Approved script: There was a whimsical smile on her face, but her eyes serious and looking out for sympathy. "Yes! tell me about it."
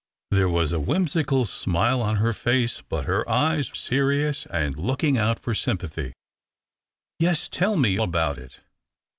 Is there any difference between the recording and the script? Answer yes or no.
no